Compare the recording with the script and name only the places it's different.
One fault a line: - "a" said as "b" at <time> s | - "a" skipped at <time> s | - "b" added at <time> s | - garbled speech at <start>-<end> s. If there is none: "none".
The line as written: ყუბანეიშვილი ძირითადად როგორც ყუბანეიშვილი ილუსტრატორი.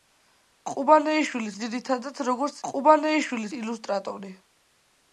none